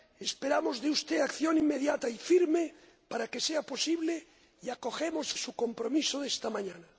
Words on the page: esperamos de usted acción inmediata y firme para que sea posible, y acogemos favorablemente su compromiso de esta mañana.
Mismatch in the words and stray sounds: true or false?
true